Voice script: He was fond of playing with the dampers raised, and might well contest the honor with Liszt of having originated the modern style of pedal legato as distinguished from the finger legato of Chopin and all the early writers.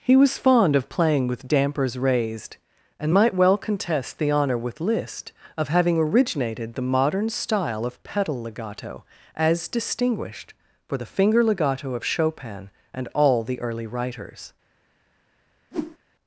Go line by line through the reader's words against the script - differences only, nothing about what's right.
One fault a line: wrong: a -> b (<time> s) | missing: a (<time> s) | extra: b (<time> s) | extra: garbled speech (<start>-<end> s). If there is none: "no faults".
missing: the (1.5 s)
wrong: from -> for (10.9 s)